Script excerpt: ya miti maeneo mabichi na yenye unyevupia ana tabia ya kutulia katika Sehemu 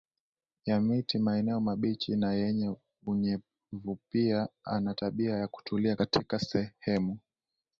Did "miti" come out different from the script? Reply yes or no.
no